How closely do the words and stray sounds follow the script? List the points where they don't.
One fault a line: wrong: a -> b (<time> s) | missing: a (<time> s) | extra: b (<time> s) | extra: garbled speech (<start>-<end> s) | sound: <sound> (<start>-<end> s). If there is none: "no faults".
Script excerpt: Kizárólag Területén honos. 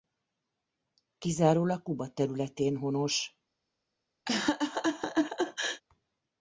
extra: Kuba (1.8 s)
sound: laugh (4.3-5.8 s)